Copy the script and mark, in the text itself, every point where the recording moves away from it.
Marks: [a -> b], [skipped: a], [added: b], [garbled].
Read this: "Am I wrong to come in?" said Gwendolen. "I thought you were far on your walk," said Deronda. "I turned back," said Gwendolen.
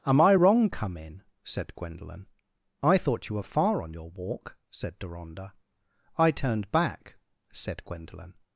"Am I wrong [skipped: to] come in?" said Gwendolen. "I thought you were far on your walk," said Deronda. "I turned back," said Gwendolen.